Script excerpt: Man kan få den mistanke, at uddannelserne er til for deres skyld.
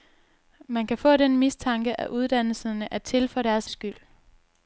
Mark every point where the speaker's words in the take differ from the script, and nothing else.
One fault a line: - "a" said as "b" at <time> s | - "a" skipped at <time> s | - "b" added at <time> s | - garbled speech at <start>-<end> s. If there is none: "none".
none